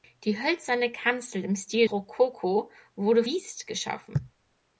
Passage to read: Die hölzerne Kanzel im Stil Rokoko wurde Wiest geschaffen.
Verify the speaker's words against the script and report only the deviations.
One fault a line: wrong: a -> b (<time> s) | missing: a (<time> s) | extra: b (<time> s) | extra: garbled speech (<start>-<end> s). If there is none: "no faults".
no faults